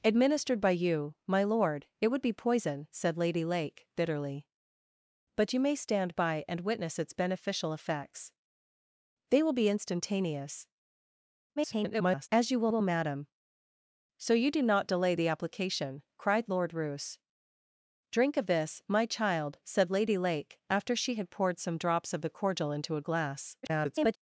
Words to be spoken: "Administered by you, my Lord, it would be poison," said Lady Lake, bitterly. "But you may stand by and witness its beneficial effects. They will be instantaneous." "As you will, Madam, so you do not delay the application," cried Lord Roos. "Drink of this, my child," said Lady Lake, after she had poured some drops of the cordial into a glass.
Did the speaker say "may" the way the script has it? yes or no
yes